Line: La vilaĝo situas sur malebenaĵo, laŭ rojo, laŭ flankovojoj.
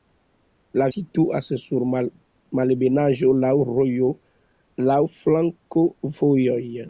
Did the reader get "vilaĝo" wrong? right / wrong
wrong